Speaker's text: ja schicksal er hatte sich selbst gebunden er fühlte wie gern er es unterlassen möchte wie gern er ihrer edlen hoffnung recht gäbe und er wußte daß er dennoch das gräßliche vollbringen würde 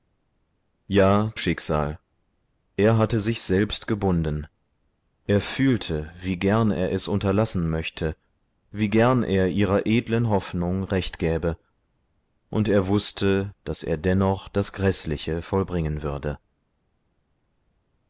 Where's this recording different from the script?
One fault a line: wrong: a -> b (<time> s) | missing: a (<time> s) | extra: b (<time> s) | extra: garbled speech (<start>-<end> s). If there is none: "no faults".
no faults